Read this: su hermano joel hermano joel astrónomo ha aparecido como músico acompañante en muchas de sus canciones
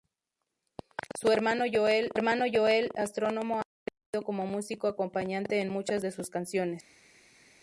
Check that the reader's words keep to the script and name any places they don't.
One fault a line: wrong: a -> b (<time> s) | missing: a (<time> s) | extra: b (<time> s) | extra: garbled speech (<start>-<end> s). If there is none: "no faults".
no faults